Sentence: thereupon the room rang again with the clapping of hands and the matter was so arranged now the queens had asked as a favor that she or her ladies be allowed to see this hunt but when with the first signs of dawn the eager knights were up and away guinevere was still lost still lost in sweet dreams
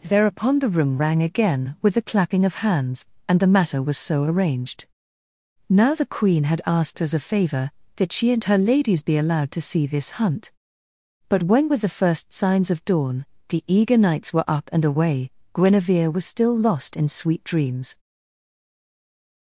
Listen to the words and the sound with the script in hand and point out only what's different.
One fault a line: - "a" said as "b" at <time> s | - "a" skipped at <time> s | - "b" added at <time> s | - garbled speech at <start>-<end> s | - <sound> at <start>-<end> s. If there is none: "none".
- "queens" said as "queen" at 6.1 s
- "or" said as "and" at 8.3 s
- "still lost" skipped at 16.9 s